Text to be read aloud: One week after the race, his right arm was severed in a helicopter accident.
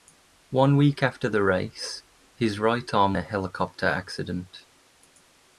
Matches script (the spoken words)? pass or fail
fail